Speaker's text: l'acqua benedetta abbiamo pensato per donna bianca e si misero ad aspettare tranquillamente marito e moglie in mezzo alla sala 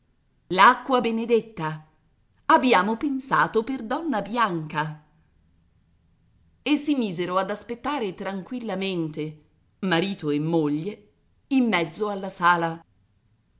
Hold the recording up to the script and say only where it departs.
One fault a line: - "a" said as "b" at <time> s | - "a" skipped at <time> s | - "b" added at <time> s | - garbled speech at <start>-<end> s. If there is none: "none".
none